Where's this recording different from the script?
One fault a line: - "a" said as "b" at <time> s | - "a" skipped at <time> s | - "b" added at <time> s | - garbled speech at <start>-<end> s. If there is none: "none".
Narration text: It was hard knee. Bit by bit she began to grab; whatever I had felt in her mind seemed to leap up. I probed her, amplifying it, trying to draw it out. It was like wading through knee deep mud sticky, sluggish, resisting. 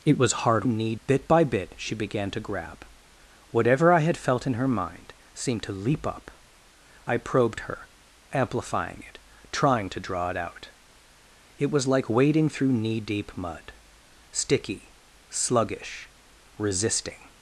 none